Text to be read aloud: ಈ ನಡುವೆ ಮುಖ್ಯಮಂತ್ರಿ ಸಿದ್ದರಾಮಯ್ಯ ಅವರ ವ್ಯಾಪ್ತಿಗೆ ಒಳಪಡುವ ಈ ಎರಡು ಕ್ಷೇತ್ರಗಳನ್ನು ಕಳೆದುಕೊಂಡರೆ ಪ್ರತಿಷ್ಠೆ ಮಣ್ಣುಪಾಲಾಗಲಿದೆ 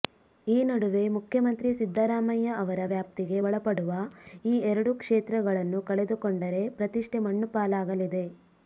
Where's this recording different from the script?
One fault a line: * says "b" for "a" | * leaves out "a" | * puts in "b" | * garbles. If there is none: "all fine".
all fine